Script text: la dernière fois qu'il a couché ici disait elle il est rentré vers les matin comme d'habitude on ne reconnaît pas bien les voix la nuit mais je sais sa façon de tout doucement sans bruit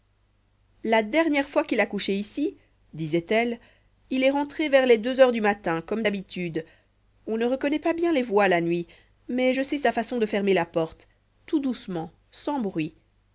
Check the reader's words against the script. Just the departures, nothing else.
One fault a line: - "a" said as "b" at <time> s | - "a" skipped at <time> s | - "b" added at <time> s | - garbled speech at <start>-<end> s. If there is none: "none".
- "deux heures du" added at 5.0 s
- "fermer la porte" added at 10.3 s